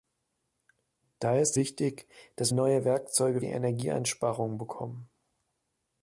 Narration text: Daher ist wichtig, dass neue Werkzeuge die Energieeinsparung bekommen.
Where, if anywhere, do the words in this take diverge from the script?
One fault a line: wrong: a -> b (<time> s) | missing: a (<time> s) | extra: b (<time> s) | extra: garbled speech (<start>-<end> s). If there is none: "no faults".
no faults